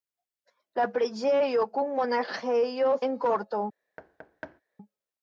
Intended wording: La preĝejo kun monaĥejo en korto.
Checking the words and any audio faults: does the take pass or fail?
fail